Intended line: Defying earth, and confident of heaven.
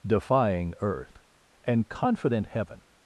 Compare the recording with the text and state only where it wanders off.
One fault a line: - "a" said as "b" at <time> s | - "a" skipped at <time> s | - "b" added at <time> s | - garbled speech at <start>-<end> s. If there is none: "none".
- "of" skipped at 2.5 s